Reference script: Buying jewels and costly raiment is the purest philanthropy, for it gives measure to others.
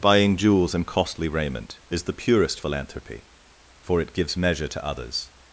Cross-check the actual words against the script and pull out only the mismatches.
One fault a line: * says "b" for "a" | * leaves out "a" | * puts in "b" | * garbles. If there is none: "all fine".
all fine